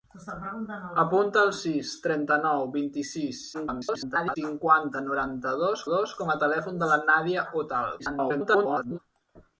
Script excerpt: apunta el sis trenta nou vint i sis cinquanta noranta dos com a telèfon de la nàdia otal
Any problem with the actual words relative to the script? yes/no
yes